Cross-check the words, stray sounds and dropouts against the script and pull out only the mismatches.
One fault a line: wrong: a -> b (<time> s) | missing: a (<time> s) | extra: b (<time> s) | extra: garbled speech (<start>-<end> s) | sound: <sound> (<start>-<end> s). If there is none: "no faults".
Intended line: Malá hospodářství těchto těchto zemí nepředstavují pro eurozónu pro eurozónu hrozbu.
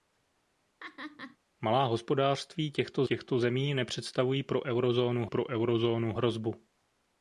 sound: laugh (0.8-1.4 s)